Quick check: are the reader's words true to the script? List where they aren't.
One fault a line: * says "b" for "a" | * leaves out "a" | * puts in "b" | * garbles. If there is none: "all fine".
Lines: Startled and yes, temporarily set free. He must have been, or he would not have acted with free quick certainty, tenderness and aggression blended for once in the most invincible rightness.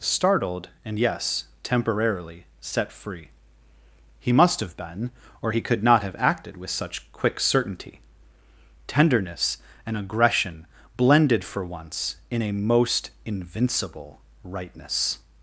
* says "could" for "would"
* says "such" for "free"
* says "a" for "the"